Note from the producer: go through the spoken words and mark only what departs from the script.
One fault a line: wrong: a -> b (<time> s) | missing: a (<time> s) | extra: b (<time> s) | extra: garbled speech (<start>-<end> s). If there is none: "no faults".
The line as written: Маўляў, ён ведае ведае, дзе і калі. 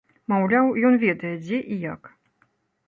missing: ведае (1.4 s)
wrong: калі -> як (1.9 s)